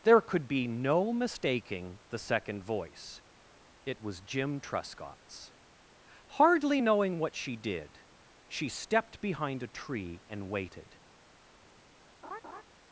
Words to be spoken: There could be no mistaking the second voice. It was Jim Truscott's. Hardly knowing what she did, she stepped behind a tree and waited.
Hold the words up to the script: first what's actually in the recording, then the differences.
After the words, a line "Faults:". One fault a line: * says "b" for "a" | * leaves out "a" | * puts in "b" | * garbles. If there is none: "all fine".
There could be no mistaking the second voice. It was Jim Truscott's. Hardly knowing what she did, she stepped behind a tree and waited.
Faults:
all fine